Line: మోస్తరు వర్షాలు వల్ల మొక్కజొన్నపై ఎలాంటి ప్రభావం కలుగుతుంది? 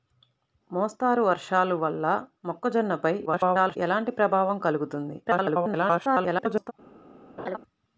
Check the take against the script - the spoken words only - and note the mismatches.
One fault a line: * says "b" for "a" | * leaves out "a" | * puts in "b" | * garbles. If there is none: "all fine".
* garbles
* garbles